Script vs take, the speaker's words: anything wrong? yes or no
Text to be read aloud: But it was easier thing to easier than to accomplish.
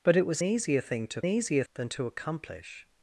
no